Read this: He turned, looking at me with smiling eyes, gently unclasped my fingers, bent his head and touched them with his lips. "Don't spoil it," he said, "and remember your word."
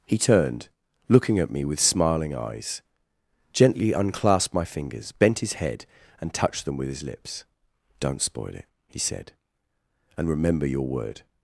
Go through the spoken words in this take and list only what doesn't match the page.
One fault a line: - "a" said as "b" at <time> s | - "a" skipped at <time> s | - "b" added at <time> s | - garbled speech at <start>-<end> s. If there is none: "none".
none